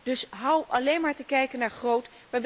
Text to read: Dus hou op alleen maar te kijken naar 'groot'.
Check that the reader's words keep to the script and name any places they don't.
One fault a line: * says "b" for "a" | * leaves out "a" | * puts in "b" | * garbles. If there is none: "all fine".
* leaves out "op"